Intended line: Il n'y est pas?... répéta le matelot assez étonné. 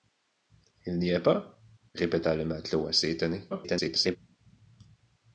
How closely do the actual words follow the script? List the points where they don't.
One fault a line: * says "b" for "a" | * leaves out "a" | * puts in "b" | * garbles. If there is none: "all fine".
* garbles